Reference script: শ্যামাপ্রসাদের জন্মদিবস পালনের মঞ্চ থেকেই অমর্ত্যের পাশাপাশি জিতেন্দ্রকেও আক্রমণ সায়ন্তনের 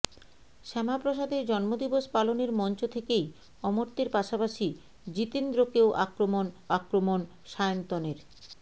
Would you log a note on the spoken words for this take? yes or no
yes